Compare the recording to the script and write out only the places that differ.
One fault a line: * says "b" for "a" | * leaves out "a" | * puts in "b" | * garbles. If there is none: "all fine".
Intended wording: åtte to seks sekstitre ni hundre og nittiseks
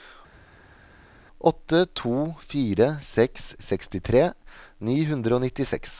* puts in "fire"